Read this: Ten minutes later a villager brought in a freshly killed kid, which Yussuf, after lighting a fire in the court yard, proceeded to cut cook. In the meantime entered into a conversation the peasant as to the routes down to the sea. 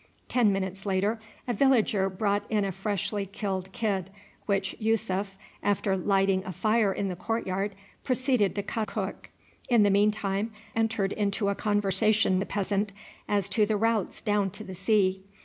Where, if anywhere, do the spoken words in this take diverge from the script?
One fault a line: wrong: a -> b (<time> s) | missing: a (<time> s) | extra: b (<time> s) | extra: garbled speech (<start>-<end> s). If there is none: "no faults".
no faults